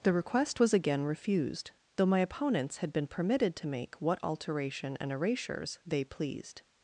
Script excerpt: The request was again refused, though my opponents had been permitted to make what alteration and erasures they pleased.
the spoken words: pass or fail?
pass